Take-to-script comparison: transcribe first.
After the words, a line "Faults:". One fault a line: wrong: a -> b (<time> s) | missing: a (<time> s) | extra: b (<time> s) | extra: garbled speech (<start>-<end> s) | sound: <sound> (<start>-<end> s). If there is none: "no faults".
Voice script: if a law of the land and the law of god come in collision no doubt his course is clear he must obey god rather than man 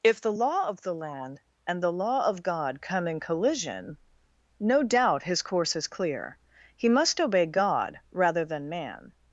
if the law of the land and the law of god come in collision no doubt his course is clear he must obey god rather than man
Faults:
wrong: a -> the (0.2 s)